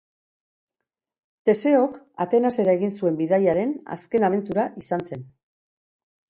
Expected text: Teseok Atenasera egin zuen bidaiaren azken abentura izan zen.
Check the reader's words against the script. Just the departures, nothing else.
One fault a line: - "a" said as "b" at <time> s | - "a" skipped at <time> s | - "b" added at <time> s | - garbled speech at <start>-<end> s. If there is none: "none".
none